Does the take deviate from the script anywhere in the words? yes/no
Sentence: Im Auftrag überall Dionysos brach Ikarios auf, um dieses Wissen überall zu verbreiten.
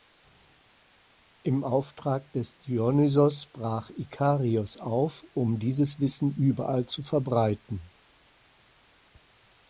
yes